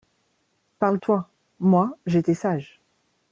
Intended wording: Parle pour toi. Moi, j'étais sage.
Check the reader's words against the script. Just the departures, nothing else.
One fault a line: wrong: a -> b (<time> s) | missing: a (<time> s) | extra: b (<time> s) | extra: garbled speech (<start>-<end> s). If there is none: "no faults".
missing: pour (1.0 s)